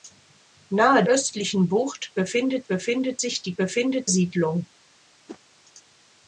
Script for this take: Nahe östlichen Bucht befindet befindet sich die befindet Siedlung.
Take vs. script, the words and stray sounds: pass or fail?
fail